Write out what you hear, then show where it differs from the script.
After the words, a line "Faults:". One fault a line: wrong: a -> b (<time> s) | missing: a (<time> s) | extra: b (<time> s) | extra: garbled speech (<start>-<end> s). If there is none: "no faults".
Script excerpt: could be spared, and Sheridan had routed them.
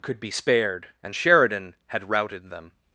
could be spared, and Sheridan had routed them.
Faults:
no faults